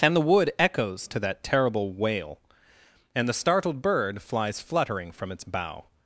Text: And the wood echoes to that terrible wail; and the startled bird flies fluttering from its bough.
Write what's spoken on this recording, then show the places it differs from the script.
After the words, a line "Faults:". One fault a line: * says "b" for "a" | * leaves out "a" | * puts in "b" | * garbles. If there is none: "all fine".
And the wood echoes to that terrible wail; and the startled bird flies fluttering from its bough.
Faults:
all fine